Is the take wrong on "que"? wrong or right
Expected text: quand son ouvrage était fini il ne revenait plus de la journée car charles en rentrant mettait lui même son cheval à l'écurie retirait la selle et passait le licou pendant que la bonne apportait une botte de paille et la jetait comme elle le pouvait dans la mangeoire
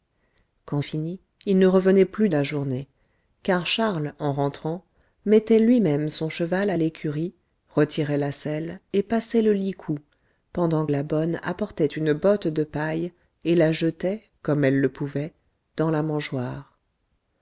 wrong